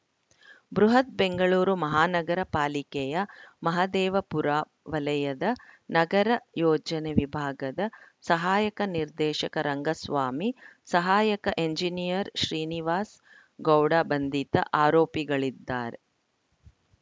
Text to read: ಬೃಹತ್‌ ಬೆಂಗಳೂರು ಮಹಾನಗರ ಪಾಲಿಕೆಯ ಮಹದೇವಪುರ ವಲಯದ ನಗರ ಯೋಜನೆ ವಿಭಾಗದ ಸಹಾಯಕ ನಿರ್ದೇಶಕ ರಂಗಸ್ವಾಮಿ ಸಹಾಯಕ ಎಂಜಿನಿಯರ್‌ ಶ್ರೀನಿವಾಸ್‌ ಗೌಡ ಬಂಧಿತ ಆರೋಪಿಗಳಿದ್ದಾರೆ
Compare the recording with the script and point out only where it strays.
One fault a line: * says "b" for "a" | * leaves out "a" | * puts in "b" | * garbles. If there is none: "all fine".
all fine